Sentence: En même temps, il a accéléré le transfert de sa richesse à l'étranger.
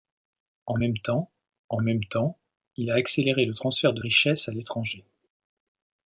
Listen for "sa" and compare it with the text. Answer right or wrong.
wrong